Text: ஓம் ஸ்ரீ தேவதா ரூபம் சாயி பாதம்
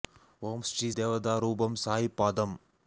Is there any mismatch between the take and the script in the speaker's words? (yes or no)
no